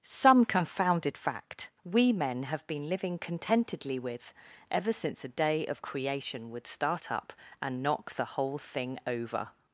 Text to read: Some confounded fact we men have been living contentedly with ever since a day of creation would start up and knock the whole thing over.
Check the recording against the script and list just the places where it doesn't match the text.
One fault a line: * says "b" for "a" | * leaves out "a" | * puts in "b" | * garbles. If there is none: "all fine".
all fine